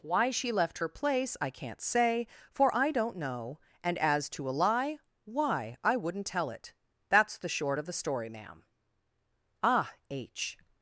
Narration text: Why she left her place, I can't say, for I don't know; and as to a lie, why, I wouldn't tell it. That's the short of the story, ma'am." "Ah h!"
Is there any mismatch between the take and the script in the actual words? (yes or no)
no